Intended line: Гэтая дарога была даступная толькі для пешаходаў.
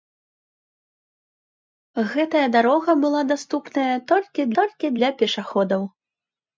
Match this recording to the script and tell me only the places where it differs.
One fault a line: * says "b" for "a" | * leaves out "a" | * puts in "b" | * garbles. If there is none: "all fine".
* puts in "толькі"